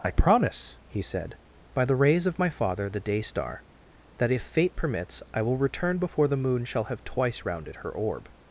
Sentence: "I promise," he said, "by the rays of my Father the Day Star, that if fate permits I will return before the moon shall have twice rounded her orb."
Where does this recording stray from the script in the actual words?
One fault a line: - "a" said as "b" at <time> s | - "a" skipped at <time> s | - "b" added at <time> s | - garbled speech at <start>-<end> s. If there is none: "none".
none